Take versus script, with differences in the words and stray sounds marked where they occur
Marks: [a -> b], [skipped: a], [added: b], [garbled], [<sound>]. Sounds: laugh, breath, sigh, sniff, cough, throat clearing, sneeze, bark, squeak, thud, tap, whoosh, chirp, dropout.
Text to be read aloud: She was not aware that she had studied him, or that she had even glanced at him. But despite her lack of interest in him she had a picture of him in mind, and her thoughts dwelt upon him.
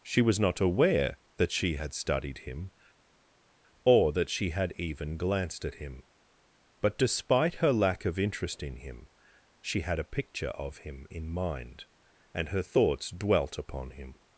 She was not aware that she had studied him, or that she had even glanced at him. But despite her lack of interest in him she had a picture of him in mind, and her thoughts dwelt upon him.